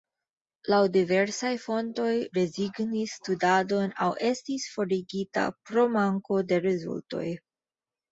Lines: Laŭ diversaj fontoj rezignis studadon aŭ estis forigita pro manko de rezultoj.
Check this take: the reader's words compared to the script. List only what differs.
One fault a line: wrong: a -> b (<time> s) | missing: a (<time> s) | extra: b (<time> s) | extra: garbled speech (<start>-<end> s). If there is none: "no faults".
no faults